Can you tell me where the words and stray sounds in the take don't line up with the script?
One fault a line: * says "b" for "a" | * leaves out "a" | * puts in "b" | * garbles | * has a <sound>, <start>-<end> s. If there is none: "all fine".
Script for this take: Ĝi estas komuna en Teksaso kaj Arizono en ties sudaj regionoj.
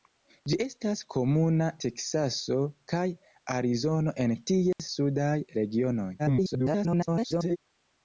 * leaves out "en"
* has a dropout, 4.7-4.8 s
* garbles